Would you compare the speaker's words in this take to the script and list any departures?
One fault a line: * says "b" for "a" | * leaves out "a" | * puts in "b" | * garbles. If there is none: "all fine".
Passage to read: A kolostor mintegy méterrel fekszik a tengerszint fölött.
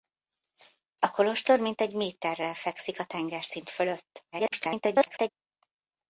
* garbles